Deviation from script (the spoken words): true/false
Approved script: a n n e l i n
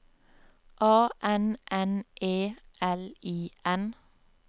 false